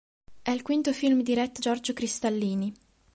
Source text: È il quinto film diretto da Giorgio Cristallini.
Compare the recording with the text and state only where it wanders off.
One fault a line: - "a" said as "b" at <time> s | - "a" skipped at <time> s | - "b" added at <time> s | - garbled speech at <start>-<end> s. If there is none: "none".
- "da" skipped at 1.6 s